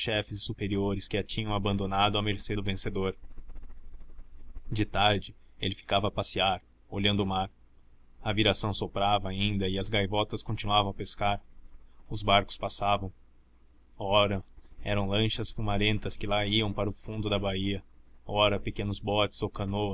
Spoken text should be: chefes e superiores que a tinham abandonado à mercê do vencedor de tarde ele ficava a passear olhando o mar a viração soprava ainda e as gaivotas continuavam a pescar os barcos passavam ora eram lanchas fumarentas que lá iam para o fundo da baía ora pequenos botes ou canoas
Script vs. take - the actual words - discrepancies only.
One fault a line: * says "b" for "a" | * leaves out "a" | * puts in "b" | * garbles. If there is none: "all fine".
all fine